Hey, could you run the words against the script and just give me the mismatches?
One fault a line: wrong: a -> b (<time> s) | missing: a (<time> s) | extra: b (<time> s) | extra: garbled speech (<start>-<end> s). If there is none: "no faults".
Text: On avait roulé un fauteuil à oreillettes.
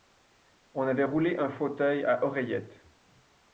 no faults